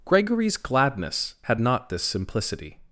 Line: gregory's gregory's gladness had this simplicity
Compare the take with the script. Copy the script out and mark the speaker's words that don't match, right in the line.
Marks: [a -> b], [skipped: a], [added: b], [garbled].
gregory's [skipped: gregory's] gladness had [added: not] this simplicity